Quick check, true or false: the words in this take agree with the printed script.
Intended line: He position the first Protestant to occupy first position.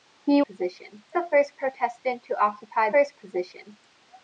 true